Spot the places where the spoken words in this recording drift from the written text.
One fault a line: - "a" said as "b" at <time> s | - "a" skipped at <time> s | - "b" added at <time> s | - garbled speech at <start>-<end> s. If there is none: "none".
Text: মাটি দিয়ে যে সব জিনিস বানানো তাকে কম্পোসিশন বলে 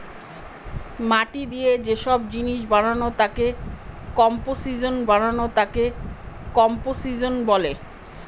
- "বানানো তাকে কম্পোসিশন" added at 5.1 s